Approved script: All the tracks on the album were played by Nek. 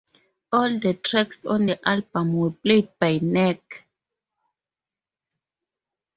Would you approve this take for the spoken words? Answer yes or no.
yes